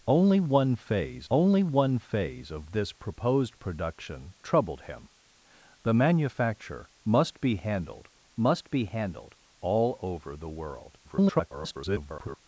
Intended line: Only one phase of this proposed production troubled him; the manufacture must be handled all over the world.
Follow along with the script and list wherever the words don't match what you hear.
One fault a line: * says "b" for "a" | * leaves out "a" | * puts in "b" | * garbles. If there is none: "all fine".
* puts in "only one phase"
* puts in "must be handled"
* garbles